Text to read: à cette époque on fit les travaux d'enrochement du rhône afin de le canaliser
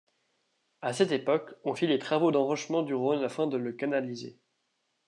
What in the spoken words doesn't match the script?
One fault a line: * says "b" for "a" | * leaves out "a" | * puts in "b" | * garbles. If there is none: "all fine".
all fine